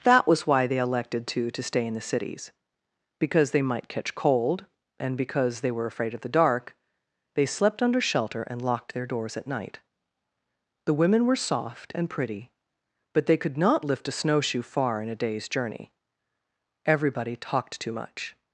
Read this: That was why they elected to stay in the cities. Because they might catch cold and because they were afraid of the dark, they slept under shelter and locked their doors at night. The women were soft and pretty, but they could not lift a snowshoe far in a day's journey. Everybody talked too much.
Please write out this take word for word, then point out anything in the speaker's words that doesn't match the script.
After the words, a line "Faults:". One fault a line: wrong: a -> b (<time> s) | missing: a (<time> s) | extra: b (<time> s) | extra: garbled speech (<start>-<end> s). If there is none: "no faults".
That was why they elected to to stay in the cities. Because they might catch cold and because they were afraid of the dark, they slept under shelter and locked their doors at night. The women were soft and pretty, but they could not lift a snowshoe far in a day's journey. Everybody talked too much.
Faults:
extra: to (1.5 s)